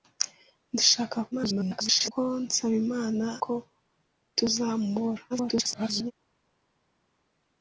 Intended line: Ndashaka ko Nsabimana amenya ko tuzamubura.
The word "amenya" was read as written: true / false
false